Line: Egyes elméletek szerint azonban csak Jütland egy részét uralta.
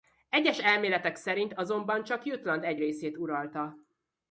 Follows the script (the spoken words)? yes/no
yes